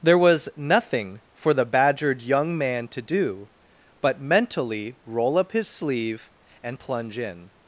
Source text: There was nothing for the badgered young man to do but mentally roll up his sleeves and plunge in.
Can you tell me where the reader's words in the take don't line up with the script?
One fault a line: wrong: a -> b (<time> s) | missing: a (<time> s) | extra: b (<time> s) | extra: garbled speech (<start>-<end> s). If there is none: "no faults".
wrong: sleeves -> sleeve (5.7 s)